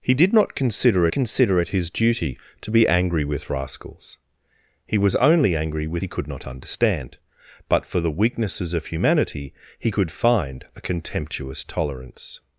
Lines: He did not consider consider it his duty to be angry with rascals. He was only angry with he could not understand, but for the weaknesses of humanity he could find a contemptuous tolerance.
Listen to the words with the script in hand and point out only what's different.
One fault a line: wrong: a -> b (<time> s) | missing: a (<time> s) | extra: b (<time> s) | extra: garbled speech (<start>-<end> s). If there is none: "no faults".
no faults